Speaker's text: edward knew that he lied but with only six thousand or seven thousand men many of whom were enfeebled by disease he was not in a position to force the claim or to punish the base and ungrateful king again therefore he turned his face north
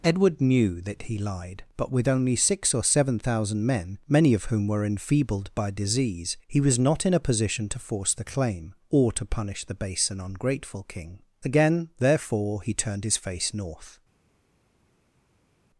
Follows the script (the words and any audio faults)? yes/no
no